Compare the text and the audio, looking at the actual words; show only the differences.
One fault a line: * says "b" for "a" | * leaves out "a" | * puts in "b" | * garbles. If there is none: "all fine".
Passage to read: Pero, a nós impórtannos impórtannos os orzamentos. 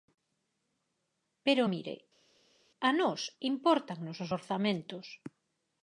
* puts in "mire"
* leaves out "impórtannos"